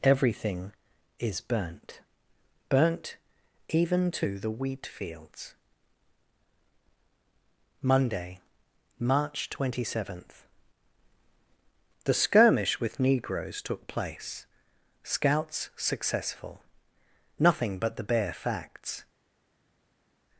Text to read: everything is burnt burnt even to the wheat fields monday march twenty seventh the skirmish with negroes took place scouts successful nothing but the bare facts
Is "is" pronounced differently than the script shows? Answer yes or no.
no